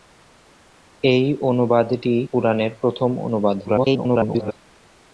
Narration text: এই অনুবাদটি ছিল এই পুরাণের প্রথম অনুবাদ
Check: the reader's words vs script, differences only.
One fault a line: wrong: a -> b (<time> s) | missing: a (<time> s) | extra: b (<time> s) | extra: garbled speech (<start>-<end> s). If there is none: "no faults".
missing: ছিল এই (2.1 s)
extra: garbled speech (3.6-4.5 s)